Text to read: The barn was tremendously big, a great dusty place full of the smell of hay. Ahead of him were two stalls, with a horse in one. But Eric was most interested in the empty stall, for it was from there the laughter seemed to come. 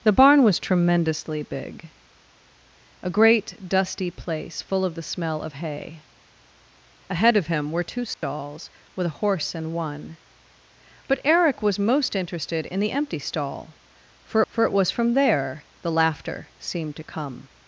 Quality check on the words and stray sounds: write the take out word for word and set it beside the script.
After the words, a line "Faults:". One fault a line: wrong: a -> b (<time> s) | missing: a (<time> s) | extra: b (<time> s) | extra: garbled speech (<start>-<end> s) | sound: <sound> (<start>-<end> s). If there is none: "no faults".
The barn was tremendously big, a great dusty place full of the smell of hay. Ahead of him were two stalls, with a horse in one. But Eric was most interested in the empty stall, for for it was from there the laughter seemed to come.
Faults:
sound: dropout (8.1-8.2 s)
extra: for (14.5 s)